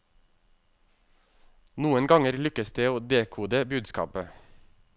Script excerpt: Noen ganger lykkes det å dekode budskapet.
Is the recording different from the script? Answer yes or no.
no